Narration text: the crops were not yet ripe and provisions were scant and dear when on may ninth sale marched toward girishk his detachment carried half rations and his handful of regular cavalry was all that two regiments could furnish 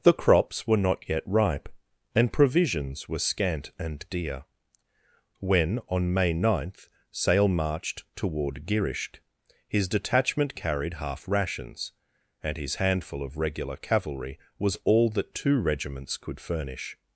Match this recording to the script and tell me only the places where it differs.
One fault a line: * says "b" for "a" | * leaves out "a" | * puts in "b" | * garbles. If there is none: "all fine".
all fine